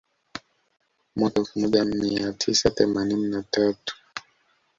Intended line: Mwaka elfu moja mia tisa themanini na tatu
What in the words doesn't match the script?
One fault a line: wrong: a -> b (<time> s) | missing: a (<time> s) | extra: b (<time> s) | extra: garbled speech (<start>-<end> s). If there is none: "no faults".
no faults